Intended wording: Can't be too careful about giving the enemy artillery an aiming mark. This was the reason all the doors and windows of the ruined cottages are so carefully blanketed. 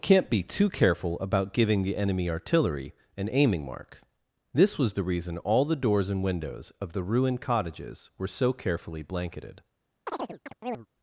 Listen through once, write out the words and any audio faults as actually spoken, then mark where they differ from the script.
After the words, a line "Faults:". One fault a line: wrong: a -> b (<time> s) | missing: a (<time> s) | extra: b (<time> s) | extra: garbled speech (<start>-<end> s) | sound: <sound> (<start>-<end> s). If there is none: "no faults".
Can't be too careful about giving the enemy artillery an aiming mark. This was the reason all the doors and windows of the ruined cottages were so carefully blanketed.
Faults:
wrong: are -> were (8.2 s)
sound: chirp (10.1-10.9 s)